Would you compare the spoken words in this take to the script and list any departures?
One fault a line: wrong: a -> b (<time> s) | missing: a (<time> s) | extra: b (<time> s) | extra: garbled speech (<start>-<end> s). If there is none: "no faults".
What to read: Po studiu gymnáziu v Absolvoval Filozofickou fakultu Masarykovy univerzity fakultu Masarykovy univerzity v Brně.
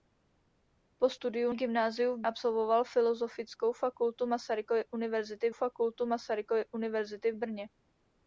no faults